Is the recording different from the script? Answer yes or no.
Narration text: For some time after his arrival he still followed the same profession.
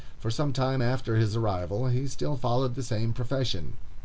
no